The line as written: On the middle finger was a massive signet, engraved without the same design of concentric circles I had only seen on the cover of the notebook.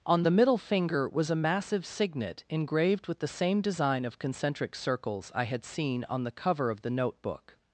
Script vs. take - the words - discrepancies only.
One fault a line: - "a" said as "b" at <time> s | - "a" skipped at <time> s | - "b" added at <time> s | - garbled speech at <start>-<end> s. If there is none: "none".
- "without" said as "with" at 3.1 s
- "only" skipped at 5.6 s